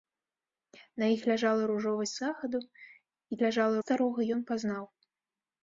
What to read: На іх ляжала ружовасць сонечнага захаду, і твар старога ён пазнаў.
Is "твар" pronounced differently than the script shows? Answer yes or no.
yes